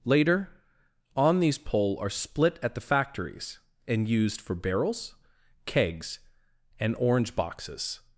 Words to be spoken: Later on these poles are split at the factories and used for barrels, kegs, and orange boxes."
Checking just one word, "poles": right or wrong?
wrong